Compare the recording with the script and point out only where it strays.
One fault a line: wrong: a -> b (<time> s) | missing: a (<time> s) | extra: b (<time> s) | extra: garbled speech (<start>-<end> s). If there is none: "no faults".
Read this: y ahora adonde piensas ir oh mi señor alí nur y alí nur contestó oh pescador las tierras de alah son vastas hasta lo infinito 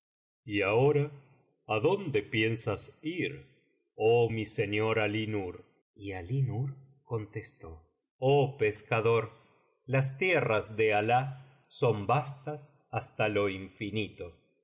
no faults